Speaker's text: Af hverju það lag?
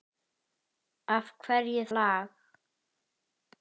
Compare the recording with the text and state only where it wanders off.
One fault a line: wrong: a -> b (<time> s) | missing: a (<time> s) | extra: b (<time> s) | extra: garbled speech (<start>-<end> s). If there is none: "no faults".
missing: það (1.8 s)